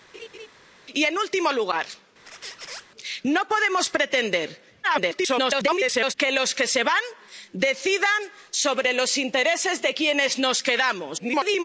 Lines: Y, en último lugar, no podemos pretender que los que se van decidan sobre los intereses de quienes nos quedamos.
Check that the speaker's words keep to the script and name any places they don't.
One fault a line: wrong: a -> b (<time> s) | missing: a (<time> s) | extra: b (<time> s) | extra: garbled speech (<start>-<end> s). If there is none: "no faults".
extra: garbled speech (4.8-6.1 s)
extra: garbled speech (11.2-11.6 s)